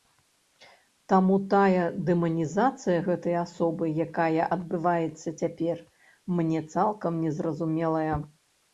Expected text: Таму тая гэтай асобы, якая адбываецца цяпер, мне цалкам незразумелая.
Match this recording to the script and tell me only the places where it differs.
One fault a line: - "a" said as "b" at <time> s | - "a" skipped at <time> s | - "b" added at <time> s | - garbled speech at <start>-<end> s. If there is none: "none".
- "дэманізацыя" added at 2.1 s